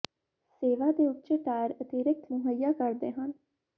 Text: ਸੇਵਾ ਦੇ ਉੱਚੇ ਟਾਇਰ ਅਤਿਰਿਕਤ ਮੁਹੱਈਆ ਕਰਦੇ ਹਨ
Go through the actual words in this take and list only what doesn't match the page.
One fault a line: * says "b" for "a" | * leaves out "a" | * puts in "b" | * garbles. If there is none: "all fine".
all fine